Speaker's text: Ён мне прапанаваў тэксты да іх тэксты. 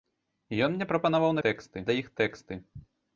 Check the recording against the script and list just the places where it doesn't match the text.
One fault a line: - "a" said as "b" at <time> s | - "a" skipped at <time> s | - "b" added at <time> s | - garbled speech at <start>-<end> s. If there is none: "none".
none